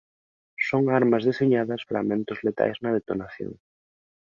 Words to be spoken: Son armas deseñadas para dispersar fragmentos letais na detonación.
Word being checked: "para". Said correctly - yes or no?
no